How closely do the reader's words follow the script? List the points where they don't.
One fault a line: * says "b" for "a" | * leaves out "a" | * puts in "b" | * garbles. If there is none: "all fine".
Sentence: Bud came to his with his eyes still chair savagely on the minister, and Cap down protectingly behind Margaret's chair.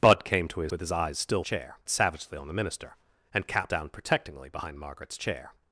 all fine